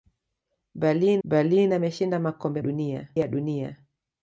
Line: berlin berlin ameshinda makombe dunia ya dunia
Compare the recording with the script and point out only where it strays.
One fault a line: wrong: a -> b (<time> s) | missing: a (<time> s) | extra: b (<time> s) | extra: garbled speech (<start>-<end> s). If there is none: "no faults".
no faults